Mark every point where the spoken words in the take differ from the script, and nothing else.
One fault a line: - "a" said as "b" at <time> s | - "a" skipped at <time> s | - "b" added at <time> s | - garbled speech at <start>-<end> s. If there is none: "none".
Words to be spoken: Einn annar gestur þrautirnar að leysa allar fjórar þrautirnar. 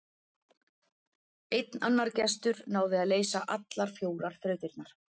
- "þrautirnar" said as "náði" at 2.8 s